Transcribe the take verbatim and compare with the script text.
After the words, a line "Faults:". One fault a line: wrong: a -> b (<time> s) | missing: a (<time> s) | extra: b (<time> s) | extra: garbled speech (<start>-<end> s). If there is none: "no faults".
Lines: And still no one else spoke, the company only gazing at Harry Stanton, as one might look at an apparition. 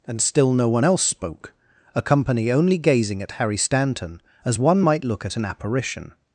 And still no one else spoke, a company only gazing at Harry Stanton, as one might look at an apparition.
Faults:
wrong: the -> a (1.9 s)